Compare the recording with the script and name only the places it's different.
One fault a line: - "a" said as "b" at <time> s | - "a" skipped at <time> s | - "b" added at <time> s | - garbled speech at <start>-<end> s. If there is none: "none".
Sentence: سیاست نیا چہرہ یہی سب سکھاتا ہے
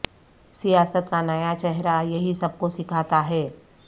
- "کا" added at 1.1 s
- "کو" added at 2.6 s